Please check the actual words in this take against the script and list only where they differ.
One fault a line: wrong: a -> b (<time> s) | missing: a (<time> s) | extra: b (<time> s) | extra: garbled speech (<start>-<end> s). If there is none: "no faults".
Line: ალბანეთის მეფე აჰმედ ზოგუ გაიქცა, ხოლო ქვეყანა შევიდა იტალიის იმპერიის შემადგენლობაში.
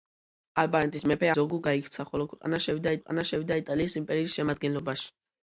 missing: აჰმედ (1.3 s)
extra: ქვეყანა შევიდა (3.0 s)